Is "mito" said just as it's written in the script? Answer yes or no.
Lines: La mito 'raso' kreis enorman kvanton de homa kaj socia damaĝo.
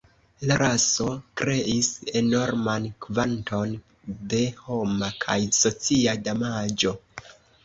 no